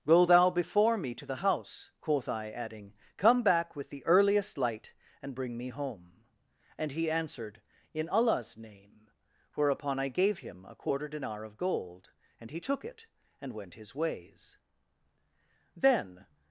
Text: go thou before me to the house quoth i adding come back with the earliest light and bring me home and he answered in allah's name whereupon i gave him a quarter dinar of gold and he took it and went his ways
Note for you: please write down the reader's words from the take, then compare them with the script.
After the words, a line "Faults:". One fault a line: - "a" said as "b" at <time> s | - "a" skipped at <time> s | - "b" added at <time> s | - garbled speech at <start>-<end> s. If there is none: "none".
go thou before me to the house quoth i adding come back with the earliest light and bring me home and he answered in allah's name whereupon i gave him a quarter dinar of gold and he took it and went his ways then
Faults:
- "then" added at 15.7 s